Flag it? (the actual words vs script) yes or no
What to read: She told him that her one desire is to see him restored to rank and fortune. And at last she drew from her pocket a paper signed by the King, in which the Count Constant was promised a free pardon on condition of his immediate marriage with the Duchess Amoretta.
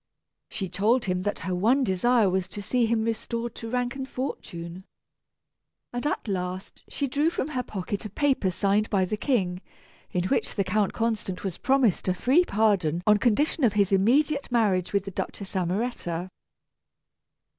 yes